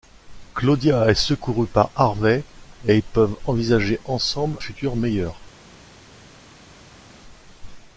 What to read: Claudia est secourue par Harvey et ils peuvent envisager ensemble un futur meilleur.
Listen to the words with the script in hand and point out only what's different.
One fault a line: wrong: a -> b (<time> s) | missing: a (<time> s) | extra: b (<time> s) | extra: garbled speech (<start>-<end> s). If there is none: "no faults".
missing: un (4.6 s)